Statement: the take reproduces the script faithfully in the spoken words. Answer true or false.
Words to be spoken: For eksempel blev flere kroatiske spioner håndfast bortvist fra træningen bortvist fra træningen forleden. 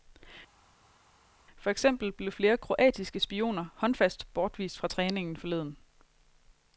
false